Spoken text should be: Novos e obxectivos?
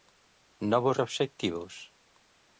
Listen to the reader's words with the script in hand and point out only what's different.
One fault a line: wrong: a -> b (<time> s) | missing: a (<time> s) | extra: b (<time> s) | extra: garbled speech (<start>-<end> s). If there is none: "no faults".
no faults